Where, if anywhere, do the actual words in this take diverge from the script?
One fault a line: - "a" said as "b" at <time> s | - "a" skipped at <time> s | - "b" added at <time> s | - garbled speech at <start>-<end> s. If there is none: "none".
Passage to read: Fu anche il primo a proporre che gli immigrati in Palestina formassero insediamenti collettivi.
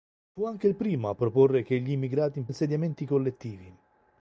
- "Palestina formassero" skipped at 2.5 s